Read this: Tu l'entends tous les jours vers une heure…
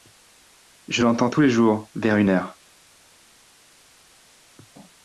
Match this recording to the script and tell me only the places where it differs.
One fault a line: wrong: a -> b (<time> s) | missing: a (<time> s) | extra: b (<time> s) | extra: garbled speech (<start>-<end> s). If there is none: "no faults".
wrong: Tu -> Je (0.9 s)